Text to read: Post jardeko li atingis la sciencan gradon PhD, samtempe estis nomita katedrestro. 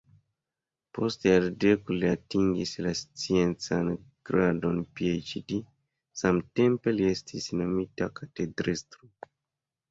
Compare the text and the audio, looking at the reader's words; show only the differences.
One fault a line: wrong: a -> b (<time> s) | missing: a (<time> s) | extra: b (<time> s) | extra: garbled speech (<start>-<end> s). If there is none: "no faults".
extra: li (7.0 s)